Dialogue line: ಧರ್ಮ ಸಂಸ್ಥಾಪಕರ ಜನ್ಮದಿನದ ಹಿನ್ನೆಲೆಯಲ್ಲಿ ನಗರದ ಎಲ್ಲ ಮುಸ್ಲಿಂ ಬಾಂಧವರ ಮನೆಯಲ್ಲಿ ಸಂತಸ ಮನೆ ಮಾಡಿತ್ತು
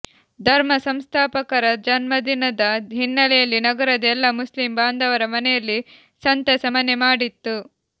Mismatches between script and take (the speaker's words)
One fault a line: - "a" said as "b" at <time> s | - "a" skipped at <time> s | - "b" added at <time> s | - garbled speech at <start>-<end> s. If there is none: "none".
none